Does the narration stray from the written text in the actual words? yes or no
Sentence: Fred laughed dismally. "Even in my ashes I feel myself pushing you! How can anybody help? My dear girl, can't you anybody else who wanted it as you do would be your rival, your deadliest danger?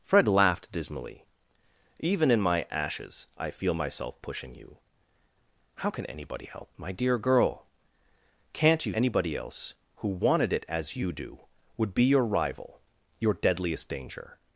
no